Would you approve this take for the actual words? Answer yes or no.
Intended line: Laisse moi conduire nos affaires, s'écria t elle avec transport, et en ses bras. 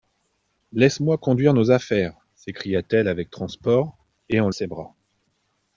yes